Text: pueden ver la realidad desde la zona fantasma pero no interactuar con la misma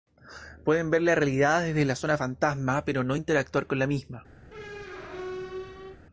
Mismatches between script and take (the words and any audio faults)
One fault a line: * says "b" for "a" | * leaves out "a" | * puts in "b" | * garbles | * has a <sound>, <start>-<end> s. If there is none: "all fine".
* has a squeak, 4.5-6.0 s